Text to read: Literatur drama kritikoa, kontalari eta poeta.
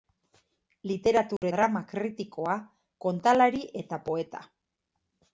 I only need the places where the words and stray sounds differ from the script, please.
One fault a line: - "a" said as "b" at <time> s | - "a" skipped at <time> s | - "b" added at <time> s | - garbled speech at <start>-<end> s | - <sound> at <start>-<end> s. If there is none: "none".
- dropout at 1.4-1.4 s